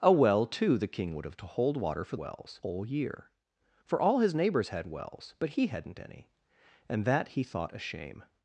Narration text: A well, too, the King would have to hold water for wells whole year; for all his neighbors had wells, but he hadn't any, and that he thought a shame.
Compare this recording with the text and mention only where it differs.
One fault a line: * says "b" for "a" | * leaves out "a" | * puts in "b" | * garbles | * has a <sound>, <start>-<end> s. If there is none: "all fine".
all fine